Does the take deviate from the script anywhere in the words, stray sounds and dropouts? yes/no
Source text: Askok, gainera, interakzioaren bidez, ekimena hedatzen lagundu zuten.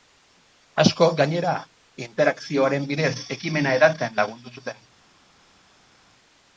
no